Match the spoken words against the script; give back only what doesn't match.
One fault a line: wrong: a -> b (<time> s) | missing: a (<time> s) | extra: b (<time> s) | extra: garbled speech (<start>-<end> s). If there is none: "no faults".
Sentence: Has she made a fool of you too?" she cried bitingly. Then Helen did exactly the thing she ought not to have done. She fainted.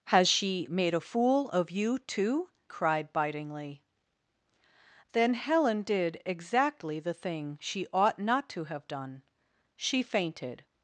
missing: she (2.5 s)